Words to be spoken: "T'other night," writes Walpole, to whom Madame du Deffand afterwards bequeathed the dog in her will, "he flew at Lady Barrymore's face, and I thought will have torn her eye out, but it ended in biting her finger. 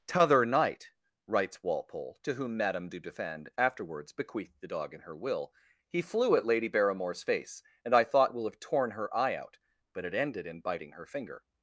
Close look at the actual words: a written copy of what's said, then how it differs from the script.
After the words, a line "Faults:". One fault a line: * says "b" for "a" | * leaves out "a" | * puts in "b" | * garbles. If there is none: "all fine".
"T'other night," writes Walpole, to whom Madame du Deffand afterwards bequeathed the dog in her will, "he flew at Lady Barrymore's face, and I thought will have torn her eye out, but it ended in biting her finger.
Faults:
all fine